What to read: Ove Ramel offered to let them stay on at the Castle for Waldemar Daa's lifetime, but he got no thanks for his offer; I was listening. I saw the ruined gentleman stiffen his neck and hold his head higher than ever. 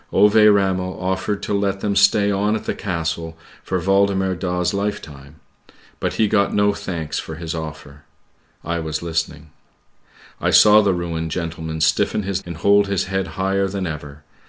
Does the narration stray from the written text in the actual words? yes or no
yes